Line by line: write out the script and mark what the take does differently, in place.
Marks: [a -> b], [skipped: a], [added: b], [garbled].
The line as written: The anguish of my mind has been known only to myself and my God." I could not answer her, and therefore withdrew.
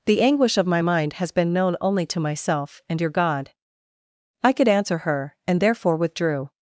The anguish of my mind has been known only to myself and [my -> your] God." I could [skipped: not] answer her, and therefore withdrew.